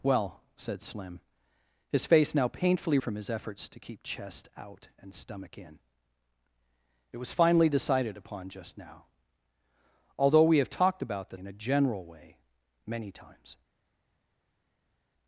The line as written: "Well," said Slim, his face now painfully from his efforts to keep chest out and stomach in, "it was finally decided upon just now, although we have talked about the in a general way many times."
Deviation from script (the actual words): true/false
false